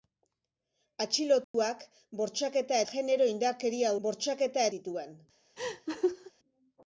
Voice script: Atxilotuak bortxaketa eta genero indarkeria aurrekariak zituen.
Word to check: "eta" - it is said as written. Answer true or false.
false